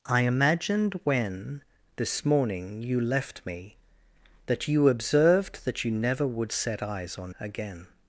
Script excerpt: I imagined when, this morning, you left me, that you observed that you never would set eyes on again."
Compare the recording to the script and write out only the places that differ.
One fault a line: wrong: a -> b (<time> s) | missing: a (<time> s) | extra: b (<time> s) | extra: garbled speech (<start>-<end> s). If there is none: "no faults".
no faults